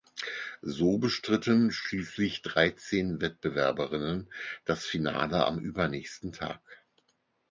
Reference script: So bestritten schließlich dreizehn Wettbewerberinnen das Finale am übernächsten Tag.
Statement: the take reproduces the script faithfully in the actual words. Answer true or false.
true